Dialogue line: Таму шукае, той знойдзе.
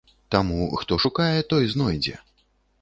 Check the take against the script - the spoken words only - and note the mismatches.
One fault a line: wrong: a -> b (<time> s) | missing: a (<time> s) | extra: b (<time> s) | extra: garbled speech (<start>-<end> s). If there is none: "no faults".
extra: хто (0.8 s)